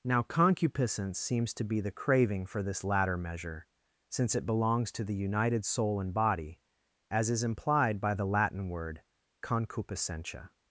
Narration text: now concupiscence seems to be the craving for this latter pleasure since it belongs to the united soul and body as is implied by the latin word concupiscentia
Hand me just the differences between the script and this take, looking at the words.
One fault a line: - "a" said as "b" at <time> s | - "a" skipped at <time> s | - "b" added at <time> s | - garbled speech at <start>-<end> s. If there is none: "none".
- "pleasure" said as "measure" at 3.2 s